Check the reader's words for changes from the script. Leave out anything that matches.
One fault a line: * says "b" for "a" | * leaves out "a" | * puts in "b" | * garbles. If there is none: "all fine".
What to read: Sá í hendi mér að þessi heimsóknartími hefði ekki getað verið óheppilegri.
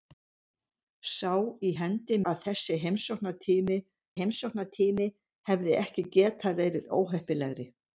* leaves out "mér"
* puts in "heimsóknartími"